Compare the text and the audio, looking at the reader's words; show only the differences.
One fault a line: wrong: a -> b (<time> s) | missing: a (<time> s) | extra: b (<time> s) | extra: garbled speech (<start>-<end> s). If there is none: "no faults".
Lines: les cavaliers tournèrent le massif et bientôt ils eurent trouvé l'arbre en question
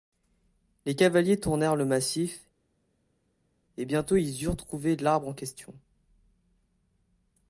no faults